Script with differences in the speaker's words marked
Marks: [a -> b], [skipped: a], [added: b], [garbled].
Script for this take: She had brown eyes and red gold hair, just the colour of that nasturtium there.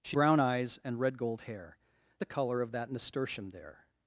She [skipped: had] brown eyes and red gold hair, [skipped: just] the colour of that nasturtium there.